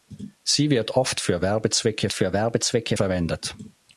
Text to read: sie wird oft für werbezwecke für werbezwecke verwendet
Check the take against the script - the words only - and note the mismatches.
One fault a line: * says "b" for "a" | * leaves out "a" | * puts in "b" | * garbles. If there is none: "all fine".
all fine